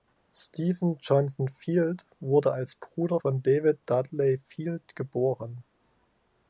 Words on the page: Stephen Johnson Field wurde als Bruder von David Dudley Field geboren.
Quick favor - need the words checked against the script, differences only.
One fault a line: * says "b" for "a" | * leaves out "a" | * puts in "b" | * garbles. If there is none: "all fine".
all fine